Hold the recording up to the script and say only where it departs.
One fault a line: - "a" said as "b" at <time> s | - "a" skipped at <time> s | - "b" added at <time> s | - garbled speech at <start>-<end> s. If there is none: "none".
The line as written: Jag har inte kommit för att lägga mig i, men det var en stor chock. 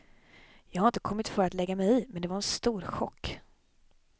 none